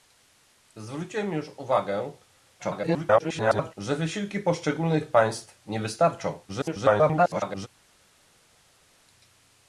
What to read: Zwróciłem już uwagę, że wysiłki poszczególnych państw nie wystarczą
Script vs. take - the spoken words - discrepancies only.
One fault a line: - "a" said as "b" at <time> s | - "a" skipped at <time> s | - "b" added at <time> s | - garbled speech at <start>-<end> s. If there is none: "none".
- garbled speech at 2.6-3.7 s
- garbled speech at 6.5-7.7 s